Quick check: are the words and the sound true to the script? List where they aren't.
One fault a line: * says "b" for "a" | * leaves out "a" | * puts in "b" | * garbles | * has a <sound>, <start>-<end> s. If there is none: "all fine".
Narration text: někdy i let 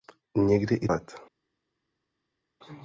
all fine